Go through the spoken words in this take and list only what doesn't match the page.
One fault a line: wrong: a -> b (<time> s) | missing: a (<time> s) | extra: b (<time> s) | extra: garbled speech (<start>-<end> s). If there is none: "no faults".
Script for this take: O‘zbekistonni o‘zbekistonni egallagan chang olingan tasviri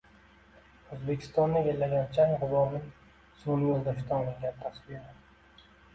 missing: o‘zbekistonni (1.6 s)
extra: g‘uborning sun'iy yo‘ldoshdan (2.5 s)